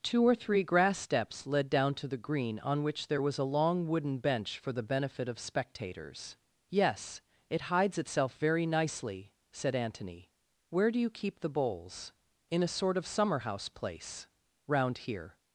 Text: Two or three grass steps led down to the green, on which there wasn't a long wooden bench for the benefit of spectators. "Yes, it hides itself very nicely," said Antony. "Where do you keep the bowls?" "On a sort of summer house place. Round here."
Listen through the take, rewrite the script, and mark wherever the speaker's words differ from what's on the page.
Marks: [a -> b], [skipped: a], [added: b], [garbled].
Two or three grass steps led down to the green, on which there [wasn't -> was] a long wooden bench for the benefit of spectators. "Yes, it hides itself very nicely," said Antony. "Where do you keep the bowls?" ["On -> In] a sort of summer house place. Round here."